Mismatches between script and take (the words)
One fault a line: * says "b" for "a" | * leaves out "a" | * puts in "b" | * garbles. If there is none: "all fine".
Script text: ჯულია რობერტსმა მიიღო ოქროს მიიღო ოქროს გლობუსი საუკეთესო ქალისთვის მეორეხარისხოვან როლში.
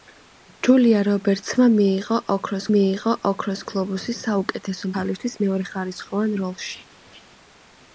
all fine